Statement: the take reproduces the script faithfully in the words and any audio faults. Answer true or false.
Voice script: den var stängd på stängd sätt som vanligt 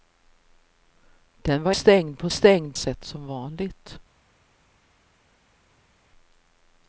true